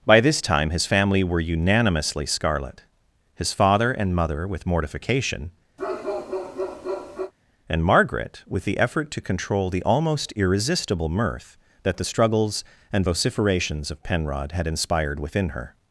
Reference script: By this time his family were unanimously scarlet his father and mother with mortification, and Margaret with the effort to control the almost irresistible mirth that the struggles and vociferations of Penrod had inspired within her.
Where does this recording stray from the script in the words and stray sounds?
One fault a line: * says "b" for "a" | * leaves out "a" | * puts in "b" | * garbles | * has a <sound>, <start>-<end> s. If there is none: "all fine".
* has a bark, 5.8-7.3 s